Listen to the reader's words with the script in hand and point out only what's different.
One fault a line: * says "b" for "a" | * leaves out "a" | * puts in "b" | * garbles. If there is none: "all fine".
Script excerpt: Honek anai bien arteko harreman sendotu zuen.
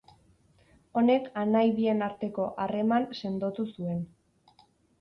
all fine